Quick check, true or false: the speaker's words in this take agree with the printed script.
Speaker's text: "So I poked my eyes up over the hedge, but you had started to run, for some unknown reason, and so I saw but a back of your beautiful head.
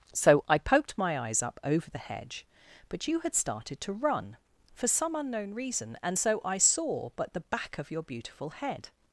false